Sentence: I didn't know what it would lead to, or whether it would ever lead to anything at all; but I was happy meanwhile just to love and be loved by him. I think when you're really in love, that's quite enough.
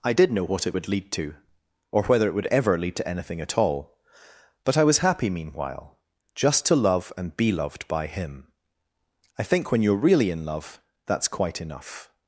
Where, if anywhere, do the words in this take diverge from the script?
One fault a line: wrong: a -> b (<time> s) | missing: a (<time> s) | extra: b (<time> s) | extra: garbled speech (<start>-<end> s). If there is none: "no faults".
wrong: didn't -> did (0.1 s)